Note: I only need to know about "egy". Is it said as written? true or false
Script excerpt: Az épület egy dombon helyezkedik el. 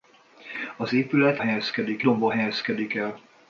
false